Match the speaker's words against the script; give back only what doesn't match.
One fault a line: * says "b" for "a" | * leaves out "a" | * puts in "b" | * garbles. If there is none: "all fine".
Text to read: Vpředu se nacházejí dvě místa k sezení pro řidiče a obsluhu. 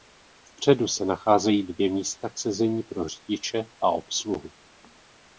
all fine